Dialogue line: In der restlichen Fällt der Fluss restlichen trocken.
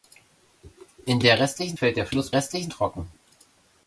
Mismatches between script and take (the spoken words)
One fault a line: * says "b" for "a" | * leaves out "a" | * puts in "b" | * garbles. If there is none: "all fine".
all fine